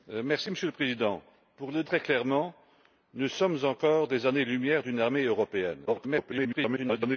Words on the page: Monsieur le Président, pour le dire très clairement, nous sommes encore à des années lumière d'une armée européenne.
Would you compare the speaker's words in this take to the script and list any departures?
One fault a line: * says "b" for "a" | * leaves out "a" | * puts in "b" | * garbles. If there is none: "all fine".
* leaves out "dire"
* garbles